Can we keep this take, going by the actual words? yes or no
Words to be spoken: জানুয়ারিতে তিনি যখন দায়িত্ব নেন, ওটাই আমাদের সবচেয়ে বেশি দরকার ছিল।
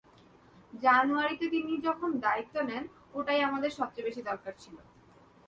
yes